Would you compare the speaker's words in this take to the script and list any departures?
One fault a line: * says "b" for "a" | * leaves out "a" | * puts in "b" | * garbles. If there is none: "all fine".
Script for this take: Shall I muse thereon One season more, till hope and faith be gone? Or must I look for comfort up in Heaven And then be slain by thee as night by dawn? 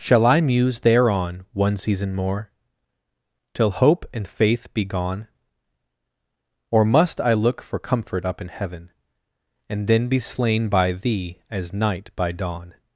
all fine